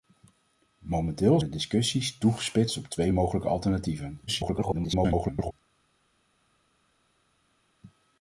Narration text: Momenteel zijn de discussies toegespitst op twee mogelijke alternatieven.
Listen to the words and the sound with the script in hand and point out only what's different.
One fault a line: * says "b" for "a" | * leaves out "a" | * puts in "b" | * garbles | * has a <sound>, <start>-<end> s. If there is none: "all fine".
* leaves out "zijn"
* garbles